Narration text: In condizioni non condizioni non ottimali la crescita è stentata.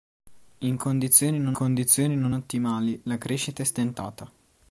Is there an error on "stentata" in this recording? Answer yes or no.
no